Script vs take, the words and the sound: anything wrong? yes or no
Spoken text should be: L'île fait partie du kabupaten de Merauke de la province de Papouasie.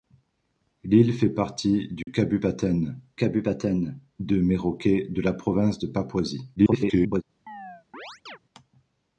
yes